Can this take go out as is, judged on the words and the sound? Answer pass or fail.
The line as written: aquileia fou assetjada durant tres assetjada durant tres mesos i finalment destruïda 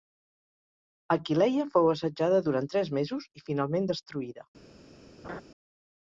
fail